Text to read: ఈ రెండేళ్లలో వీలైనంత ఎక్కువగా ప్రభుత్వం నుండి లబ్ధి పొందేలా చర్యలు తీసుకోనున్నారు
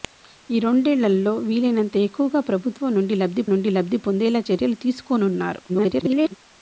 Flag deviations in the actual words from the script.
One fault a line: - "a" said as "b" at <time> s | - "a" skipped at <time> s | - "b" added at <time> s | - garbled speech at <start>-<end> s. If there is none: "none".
- "నుండి లబ్ధి" added at 3.5 s
- garbled speech at 5.7-6.4 s